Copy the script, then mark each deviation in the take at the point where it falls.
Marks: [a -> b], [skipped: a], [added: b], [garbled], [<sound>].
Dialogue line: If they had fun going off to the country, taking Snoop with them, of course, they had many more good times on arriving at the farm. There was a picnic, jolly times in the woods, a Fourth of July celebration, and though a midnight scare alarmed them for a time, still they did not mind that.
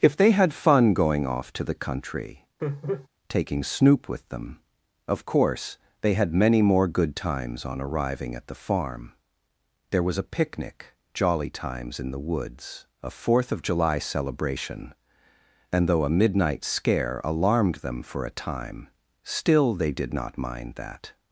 If they had fun going off to the country, [laugh] taking Snoop with them, of course, they had many more good times on arriving at the farm. There was a picnic, jolly times in the woods, a Fourth of July celebration, and though a midnight scare alarmed them for a time, still they did not mind that.